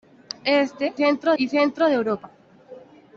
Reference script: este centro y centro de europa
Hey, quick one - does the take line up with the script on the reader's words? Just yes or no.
yes